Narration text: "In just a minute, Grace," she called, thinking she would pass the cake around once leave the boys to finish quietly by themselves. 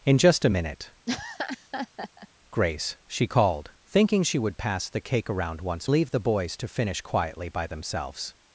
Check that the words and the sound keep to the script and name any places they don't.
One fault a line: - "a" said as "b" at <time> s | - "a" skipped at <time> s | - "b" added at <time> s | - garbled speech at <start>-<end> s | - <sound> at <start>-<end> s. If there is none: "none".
- laugh at 1.1-2.3 s